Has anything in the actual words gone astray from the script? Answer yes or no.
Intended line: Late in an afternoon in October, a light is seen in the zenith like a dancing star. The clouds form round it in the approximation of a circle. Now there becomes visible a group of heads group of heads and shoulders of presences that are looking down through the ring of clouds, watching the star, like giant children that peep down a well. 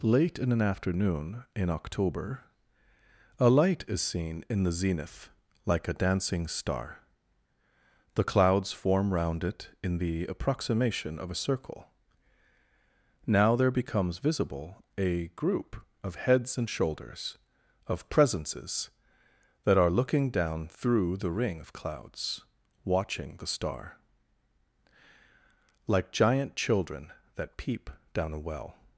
yes